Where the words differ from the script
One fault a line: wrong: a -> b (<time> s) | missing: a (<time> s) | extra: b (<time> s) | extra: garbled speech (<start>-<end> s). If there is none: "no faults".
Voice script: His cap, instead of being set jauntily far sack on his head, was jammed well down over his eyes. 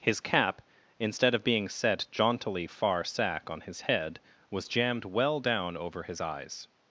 no faults